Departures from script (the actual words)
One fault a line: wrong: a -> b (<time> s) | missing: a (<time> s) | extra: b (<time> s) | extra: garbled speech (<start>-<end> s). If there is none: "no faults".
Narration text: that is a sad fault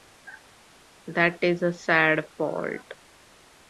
no faults